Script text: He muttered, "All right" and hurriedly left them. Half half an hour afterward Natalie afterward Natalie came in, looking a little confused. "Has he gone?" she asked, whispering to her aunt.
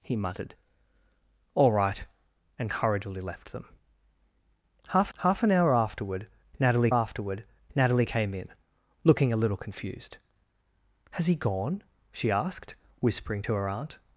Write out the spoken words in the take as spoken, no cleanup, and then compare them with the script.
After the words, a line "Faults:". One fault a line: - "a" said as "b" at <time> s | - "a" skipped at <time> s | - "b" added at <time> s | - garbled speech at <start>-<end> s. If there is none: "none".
He muttered, "All right" and hurriedly left them. Half half an hour afterward Natalie afterward Natalie came in, looking a little confused. "Has he gone?" she asked, whispering to her aunt.
Faults:
none